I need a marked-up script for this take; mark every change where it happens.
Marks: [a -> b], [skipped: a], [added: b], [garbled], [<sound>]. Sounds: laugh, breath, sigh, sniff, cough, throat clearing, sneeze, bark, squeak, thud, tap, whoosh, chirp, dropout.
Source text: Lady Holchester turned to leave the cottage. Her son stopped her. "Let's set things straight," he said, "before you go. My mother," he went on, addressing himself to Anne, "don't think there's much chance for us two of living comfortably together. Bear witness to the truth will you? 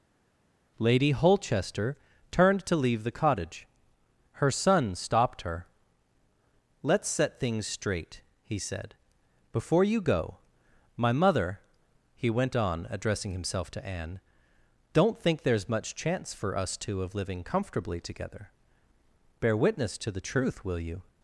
Lady Holchester turned to leave the cottage. Her son stopped her. "Let's set things straight," he said, "before you go. My mother," he went on, addressing himself to Anne, "don't think there's much chance for us two of living comfortably together. Bear witness to the truth will you?